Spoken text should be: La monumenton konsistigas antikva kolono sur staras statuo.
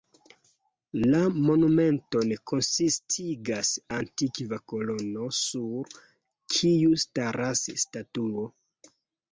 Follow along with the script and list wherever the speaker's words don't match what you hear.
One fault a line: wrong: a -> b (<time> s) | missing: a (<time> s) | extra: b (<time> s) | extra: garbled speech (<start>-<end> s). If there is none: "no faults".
extra: kiu (6.6 s)